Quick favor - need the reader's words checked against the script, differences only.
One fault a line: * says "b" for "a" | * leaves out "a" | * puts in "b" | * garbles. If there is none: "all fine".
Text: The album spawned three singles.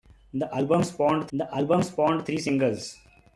* puts in "the album spawned"